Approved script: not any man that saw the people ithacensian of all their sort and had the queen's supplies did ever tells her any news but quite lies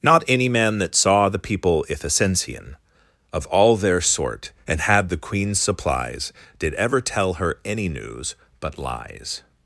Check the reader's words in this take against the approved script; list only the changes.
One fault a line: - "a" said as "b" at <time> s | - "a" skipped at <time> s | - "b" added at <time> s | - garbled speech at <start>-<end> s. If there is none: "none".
- "tells" said as "tell" at 7.0 s
- "quite" skipped at 8.8 s